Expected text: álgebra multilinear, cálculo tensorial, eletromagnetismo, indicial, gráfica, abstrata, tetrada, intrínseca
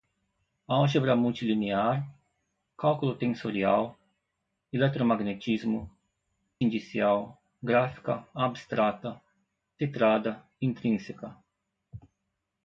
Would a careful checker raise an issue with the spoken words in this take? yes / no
no